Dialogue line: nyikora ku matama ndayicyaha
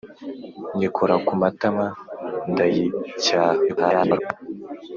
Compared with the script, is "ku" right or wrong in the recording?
right